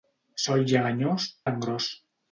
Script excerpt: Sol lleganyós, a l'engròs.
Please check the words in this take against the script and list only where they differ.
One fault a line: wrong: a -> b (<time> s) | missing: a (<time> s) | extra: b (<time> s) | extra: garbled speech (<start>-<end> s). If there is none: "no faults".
no faults